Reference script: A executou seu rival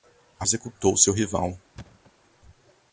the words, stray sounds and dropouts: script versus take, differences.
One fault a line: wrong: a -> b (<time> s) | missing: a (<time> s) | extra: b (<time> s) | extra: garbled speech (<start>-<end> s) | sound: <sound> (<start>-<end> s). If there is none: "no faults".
sound: thud (1.8-2.1 s)